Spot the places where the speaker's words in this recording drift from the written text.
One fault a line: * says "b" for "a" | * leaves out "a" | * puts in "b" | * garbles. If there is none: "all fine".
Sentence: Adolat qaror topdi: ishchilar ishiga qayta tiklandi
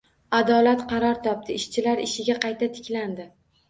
all fine